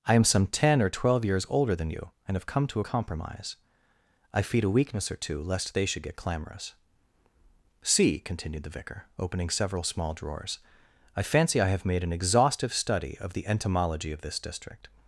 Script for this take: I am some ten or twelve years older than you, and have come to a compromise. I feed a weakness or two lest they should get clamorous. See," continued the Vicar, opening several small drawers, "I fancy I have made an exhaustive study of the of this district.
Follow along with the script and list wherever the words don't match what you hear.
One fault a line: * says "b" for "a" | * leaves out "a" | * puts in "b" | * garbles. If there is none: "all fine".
* puts in "entomology"